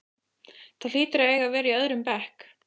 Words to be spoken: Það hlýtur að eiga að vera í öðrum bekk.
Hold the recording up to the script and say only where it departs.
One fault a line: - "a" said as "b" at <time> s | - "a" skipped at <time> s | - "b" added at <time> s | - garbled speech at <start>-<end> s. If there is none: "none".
none